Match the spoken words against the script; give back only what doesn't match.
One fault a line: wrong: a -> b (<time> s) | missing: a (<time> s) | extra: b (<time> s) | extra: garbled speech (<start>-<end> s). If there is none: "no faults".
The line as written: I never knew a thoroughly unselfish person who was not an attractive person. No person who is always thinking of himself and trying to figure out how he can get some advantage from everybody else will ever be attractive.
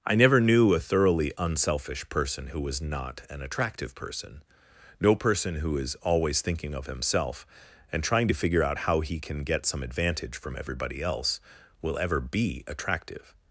no faults